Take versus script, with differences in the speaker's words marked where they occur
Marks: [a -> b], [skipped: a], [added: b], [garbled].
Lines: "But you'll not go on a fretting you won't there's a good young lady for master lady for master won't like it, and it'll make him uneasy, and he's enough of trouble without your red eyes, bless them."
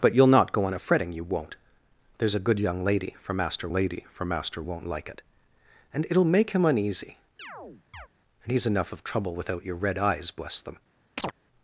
"But you'll not go on a fretting you won't there's a good young lady for master lady for master won't like it, and it'll make him uneasy, and he's enough of trouble without your red eyes, bless them."